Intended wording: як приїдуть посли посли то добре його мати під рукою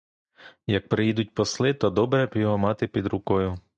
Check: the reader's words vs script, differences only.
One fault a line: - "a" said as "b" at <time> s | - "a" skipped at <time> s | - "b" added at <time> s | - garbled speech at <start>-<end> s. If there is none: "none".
- "посли" skipped at 1.7 s
- "б" added at 2.3 s